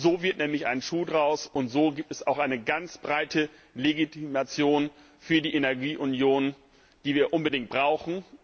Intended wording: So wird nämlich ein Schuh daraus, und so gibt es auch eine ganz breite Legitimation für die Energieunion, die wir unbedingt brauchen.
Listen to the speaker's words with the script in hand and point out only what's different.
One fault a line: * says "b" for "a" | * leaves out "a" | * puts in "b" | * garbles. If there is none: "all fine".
all fine